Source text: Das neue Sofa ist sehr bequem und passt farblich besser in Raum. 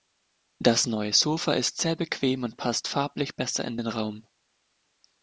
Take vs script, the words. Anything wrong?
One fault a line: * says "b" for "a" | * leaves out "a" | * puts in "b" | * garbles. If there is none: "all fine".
* puts in "den"